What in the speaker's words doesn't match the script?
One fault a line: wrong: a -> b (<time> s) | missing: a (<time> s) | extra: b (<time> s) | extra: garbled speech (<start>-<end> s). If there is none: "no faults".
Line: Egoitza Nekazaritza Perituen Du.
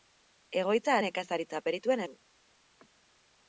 no faults